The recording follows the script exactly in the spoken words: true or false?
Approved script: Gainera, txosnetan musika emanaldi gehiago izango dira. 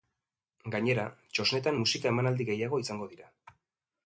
true